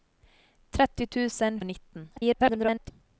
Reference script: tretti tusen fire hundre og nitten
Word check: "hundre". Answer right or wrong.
wrong